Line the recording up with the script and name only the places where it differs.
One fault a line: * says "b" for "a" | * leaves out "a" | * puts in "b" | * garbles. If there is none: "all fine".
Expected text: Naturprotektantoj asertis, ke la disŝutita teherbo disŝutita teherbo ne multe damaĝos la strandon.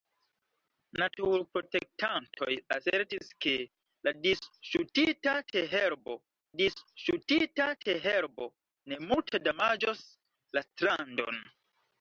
all fine